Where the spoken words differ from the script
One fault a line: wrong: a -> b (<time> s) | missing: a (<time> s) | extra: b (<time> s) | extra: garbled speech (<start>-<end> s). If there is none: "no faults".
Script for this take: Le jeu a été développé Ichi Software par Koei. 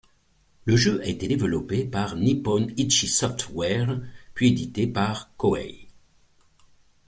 extra: par Nippon (1.8 s)
extra: puis édité (4.3 s)